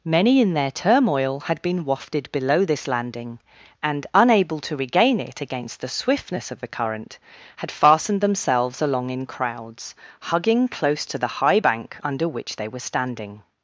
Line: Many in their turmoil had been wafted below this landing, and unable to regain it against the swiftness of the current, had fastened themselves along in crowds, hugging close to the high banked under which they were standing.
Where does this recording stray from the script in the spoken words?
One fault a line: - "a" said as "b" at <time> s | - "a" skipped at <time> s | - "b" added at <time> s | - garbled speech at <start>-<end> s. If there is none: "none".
- "banked" said as "bank" at 11.6 s